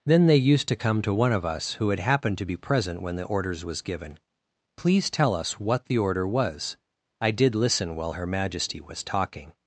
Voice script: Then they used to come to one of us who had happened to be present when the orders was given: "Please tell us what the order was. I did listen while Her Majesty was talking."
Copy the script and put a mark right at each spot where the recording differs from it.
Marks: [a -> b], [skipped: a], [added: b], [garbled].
Then they used to come to one of us who had happened to be present when the orders was given: "Please tell us what the order was. I did listen while Her Majesty was talking."